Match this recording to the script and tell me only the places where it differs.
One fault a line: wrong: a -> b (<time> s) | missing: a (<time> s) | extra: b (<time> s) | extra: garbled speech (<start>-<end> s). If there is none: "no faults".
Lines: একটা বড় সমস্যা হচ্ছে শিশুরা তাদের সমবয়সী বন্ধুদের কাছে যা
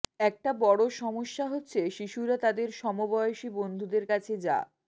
no faults